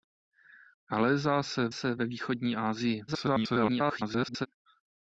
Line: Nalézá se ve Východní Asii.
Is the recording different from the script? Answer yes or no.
yes